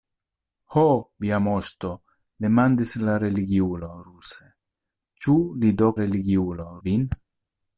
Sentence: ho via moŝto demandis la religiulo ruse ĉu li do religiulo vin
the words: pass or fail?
pass